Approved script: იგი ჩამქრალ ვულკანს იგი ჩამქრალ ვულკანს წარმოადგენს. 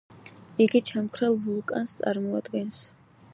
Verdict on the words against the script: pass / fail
fail